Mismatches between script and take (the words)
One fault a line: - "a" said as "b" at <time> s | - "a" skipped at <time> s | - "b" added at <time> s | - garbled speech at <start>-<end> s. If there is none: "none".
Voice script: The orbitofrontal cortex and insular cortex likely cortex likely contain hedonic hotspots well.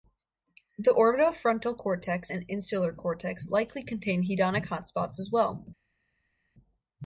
- "cortex likely" skipped at 3.8 s
- "as" added at 5.2 s